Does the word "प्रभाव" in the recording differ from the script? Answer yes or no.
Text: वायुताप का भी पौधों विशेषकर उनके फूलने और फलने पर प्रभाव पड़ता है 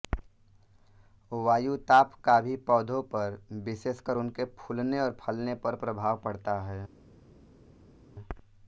no